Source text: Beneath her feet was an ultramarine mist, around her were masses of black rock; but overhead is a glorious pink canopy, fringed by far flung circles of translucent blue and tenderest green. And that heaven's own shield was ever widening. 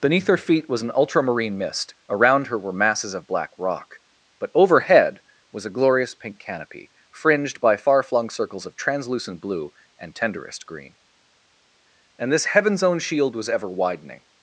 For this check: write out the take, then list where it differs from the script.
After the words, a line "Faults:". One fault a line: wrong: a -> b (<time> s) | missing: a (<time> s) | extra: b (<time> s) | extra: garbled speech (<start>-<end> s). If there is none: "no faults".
Beneath her feet was an ultramarine mist, around her were masses of black rock; but overhead was a glorious pink canopy, fringed by far flung circles of translucent blue and tenderest green. And this heaven's own shield was ever widening.
Faults:
wrong: is -> was (5.5 s)
wrong: that -> this (12.3 s)